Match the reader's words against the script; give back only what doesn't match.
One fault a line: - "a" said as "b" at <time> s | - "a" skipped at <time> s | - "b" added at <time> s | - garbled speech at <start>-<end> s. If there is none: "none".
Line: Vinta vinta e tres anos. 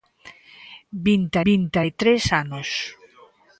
none